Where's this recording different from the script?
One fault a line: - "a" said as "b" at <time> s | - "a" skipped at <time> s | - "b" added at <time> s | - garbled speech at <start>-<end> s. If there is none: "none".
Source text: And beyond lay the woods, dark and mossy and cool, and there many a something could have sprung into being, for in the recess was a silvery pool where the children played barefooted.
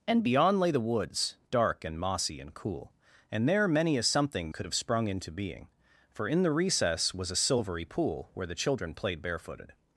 none